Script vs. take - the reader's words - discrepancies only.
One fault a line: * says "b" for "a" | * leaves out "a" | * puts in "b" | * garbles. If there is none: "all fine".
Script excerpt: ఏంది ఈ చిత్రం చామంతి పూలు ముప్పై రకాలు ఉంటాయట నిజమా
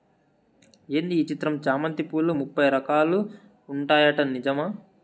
all fine